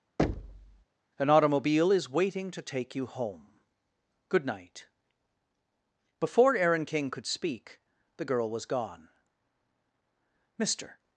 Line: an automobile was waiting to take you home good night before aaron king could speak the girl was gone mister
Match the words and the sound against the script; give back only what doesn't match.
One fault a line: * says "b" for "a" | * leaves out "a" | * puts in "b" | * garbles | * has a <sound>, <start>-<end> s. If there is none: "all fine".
* has a thud, 0.2-0.8 s
* says "is" for "was"